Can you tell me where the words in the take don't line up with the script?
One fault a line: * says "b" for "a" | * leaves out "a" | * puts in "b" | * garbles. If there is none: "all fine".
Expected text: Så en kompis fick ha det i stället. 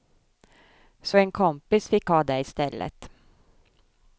all fine